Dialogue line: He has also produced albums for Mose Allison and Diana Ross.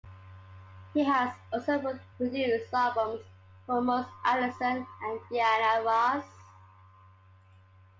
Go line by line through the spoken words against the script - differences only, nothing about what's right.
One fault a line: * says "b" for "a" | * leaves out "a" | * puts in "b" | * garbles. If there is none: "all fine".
all fine